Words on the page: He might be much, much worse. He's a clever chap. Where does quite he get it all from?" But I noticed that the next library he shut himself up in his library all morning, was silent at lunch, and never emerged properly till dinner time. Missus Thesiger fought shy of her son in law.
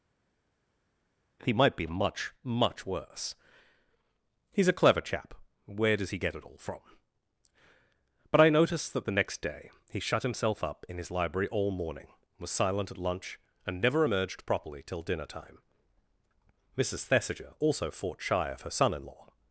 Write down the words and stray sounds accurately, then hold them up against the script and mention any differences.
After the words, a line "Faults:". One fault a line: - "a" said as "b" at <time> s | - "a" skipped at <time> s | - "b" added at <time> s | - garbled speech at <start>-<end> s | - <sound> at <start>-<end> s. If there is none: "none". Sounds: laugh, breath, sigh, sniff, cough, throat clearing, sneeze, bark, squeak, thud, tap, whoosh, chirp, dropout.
He might be much, much worse. He's a clever chap. Where does he get it all from?" But I noticed that the next day he shut himself up in his library all morning, was silent at lunch, and never emerged properly till dinner time. Missus Thesiger also fought shy of her son in law.
Faults:
- "quite" skipped at 6.1 s
- "library" said as "day" at 9.4 s
- "also" added at 17.6 s